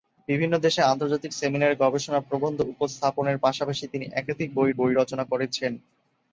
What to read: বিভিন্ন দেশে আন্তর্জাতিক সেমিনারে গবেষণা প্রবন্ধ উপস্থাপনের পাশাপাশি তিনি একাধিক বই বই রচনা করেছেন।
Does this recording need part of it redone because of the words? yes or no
no